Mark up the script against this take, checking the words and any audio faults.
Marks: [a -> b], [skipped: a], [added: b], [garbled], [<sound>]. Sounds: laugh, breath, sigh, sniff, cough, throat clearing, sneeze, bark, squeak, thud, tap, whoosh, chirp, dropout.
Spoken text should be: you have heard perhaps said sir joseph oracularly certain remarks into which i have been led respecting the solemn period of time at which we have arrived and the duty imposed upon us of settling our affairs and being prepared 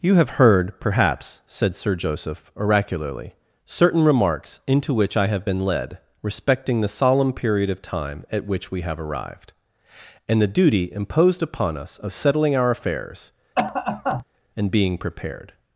you have heard perhaps said sir joseph oracularly certain remarks into which i have been led respecting the solemn period of time at which we have arrived and the duty imposed upon us of settling our affairs [cough] and being prepared